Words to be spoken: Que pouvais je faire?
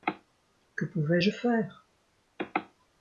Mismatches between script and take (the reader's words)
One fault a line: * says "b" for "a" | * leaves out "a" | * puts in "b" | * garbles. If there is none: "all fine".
all fine